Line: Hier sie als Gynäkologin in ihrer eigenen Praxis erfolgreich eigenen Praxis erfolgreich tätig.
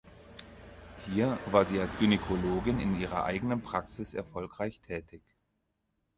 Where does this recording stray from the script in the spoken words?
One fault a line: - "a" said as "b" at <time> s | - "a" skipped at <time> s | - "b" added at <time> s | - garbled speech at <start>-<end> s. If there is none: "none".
- "war" added at 1.4 s
- "eigenen Praxis erfolgreich" skipped at 4.8 s